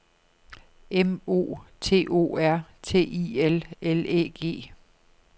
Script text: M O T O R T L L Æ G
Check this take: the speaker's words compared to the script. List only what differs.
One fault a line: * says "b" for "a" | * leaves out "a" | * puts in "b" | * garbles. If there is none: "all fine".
* puts in "I"